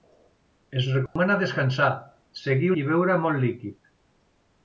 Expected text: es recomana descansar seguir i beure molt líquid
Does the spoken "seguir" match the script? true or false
true